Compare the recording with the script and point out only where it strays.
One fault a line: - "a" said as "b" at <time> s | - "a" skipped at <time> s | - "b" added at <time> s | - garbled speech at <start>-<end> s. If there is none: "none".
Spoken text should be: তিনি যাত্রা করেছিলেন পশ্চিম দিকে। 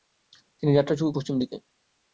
- "করেছিলেন" skipped at 0.9 s